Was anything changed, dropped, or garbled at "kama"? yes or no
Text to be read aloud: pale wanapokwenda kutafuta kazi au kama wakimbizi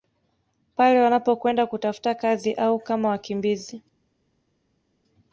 no